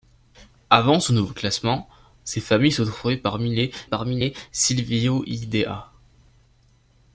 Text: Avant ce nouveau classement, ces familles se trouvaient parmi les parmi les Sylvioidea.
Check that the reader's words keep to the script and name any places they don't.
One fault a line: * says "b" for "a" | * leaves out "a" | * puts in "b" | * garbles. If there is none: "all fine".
all fine